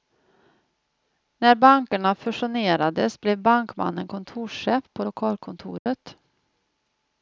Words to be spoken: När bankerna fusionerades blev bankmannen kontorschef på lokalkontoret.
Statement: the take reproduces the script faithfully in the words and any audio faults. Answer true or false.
false